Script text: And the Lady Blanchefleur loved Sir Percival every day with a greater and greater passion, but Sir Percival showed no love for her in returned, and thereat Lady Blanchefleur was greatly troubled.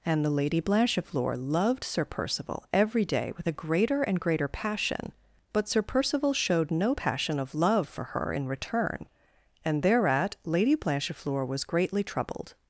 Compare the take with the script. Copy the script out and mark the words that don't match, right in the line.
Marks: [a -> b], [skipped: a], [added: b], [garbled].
And the Lady Blanchefleur loved Sir Percival every day with a greater and greater passion, but Sir Percival showed no [added: passion of] love for her in [returned, -> return] and thereat Lady Blanchefleur was greatly troubled.